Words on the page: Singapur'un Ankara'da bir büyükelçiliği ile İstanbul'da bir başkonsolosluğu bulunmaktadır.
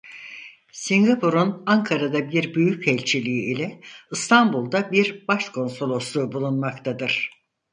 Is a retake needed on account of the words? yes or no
no